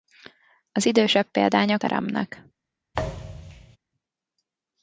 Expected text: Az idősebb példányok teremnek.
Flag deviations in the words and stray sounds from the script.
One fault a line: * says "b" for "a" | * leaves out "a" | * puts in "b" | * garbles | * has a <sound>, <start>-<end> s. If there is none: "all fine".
* has a thud, 2.9-3.8 s